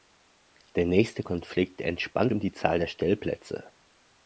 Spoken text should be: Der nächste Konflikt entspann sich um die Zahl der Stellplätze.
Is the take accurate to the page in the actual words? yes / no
no